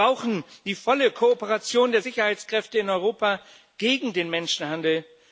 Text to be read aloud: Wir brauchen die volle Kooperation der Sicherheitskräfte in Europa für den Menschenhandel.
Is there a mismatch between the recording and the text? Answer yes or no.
yes